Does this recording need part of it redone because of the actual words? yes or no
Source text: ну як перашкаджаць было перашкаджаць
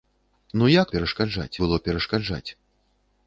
no